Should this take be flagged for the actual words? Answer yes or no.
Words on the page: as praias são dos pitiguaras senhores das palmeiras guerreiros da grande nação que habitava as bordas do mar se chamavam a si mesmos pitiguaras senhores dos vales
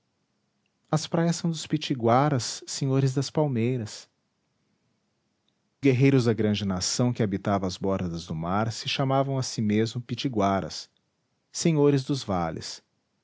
no